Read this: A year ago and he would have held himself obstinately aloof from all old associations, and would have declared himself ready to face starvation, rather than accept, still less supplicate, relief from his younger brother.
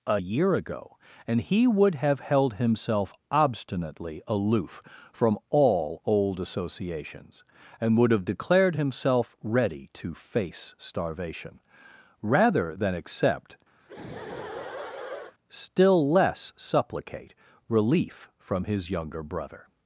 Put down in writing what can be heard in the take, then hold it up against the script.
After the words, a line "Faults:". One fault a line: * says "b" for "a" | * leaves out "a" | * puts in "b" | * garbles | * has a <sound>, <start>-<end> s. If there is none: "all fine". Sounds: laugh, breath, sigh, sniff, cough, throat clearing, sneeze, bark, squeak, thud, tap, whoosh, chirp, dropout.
A year ago and he would have held himself obstinately aloof from all old associations, and would have declared himself ready to face starvation, rather than accept, still less supplicate, relief from his younger brother.
Faults:
* has a laugh, 13.8-15.3 s